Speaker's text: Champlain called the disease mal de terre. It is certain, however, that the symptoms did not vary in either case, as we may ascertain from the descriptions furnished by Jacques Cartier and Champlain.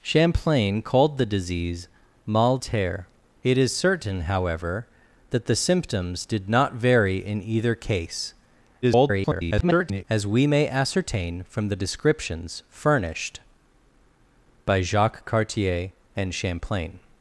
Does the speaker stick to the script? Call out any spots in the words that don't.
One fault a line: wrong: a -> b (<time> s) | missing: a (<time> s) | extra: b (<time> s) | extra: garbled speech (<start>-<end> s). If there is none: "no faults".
missing: de (2.6 s)
extra: garbled speech (8.8-10.0 s)